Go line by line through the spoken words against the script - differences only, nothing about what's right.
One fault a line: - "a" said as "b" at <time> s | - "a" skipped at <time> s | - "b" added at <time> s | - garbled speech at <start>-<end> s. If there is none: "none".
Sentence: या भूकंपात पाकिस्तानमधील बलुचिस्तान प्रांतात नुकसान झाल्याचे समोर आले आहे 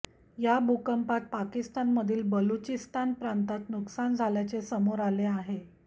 none